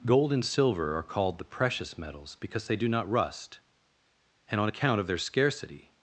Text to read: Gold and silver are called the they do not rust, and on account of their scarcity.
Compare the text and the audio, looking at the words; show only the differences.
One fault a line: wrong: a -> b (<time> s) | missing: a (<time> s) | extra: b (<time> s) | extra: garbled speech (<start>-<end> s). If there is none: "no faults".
extra: precious metals because (1.4 s)